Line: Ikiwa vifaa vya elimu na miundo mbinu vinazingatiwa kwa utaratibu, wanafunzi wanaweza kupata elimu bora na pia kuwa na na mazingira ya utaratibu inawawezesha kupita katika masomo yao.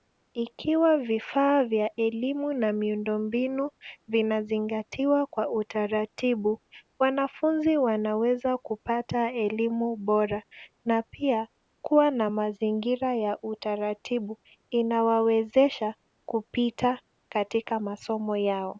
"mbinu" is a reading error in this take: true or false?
false